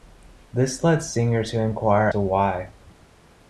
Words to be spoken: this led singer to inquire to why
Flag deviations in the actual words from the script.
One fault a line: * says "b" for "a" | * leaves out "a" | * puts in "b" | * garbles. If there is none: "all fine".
all fine